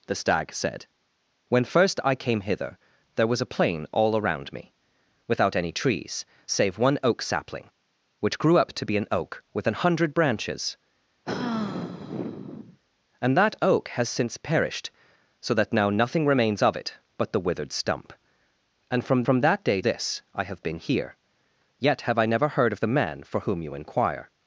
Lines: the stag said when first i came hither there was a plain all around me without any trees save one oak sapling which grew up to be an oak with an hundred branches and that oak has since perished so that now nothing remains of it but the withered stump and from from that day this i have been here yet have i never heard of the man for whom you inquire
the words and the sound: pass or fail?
fail